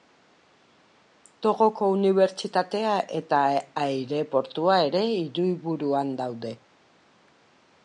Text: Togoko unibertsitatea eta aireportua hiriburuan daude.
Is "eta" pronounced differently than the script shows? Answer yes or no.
no